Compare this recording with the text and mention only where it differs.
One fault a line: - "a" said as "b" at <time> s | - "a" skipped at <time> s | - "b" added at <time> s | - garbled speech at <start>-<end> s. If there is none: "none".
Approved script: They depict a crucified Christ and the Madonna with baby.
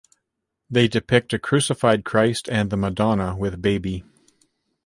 none